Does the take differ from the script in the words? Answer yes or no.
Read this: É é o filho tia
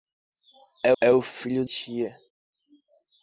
no